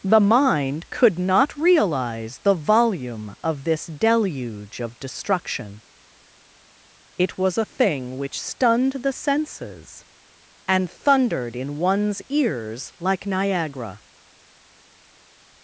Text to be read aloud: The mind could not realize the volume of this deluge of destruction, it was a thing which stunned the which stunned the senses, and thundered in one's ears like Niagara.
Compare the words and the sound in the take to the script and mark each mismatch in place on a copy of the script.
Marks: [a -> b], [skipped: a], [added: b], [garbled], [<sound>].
The mind could not realize the volume of this deluge of destruction, it was a thing which stunned the [skipped: which stunned the] senses, and thundered in one's ears like Niagara.